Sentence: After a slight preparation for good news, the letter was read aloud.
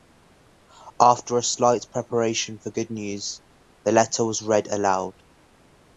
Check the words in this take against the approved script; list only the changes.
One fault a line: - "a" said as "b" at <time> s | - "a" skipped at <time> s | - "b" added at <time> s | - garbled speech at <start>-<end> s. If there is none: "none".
none